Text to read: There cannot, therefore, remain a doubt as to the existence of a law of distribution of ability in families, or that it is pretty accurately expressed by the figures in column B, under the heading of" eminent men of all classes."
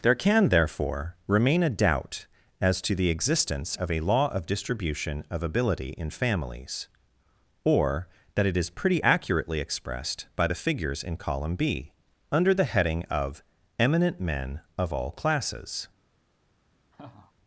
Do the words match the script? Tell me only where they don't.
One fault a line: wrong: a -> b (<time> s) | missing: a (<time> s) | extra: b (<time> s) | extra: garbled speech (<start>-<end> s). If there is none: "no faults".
wrong: cannot -> can (0.1 s)